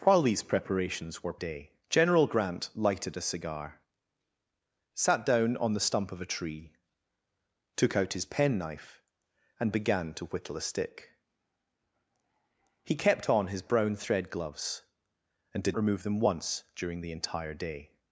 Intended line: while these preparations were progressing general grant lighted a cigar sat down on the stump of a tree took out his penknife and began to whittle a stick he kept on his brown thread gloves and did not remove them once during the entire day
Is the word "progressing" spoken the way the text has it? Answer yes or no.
no